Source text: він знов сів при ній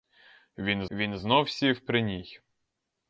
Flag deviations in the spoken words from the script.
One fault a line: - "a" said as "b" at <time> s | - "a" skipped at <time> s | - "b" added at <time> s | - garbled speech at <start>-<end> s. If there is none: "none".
- "він" added at 0.9 s